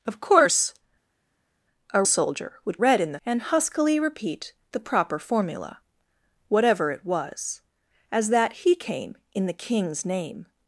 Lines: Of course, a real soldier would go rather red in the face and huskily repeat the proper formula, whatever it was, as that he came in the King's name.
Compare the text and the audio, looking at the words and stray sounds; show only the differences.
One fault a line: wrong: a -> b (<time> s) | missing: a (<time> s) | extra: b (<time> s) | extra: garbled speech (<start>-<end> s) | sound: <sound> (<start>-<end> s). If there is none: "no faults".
missing: real (2.0 s)
missing: go rather (2.8 s)
missing: face (3.2 s)